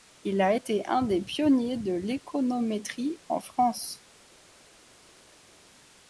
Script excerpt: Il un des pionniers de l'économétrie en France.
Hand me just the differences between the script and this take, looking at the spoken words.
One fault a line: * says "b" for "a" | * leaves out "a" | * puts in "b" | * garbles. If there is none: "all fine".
* puts in "a été"